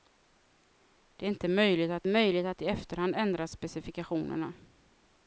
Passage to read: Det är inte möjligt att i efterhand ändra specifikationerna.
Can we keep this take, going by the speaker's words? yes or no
no